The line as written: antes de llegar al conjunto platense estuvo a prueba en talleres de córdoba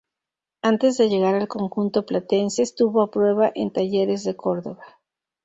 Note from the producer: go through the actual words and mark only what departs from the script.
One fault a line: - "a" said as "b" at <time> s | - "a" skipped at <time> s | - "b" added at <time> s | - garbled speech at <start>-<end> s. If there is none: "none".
none